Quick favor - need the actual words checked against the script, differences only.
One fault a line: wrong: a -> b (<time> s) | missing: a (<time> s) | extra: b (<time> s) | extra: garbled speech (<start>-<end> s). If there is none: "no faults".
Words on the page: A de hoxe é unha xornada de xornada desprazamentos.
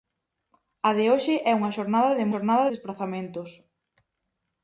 no faults